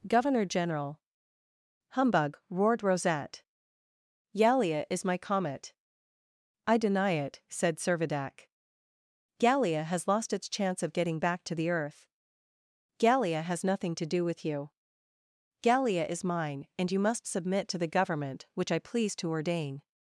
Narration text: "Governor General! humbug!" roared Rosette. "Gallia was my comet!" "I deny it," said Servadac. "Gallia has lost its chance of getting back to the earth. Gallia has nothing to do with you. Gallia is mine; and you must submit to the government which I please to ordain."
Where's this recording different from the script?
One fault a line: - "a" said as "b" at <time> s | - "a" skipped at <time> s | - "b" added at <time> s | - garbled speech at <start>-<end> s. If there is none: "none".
- "was" said as "is" at 4.9 s